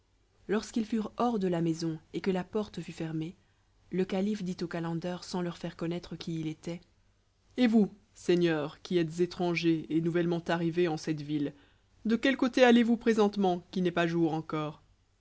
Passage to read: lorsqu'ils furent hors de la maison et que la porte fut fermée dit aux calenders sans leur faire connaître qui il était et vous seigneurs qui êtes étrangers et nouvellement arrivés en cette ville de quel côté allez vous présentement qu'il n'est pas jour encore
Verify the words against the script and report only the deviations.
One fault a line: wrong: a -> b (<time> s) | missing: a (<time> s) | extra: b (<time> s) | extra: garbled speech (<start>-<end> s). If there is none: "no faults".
extra: le calife (3.9 s)